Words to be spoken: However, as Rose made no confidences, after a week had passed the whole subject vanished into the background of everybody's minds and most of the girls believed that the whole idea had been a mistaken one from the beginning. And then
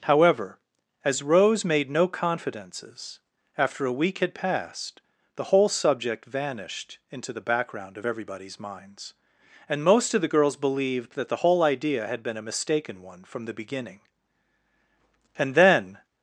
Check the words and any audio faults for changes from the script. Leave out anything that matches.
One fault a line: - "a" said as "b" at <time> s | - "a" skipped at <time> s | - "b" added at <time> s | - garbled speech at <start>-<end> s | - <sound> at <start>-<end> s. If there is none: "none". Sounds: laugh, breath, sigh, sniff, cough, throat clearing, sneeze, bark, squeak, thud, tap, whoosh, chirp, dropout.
none